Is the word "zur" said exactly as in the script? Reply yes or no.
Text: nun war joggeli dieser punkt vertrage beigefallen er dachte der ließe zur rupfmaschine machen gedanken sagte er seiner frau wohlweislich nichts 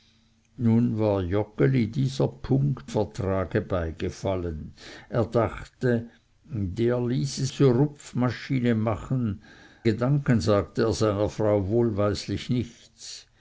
yes